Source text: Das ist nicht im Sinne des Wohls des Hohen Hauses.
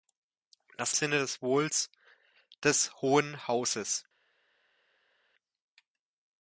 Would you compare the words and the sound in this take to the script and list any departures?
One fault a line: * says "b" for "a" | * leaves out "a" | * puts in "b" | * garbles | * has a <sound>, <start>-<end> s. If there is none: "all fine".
* leaves out "ist nicht im"